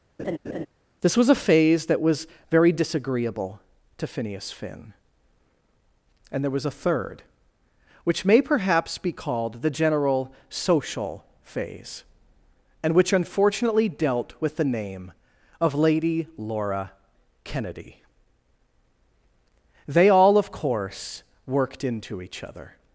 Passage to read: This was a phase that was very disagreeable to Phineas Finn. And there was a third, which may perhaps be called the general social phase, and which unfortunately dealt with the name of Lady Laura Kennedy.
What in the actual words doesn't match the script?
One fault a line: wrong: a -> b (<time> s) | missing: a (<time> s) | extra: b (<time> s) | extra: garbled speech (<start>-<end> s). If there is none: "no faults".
extra: They all of course worked into each other (19.9 s)